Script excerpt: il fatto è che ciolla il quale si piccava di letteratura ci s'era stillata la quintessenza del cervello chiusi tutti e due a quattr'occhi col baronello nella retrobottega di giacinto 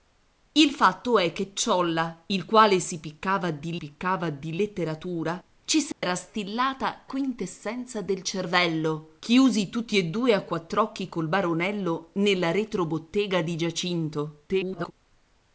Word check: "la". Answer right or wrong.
wrong